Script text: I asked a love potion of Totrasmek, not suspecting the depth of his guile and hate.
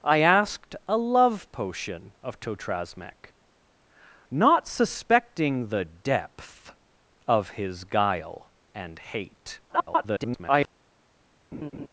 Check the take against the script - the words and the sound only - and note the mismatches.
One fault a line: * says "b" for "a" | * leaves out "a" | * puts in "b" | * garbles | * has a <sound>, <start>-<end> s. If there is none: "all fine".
* garbles
* has a laugh, 11.5-11.9 s